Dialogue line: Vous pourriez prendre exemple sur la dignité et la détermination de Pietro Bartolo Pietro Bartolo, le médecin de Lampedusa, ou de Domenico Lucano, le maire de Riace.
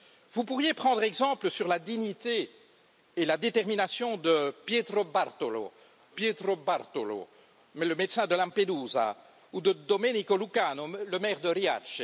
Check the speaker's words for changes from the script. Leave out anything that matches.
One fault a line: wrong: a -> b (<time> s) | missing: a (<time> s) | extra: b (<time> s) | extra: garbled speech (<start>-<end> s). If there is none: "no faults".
no faults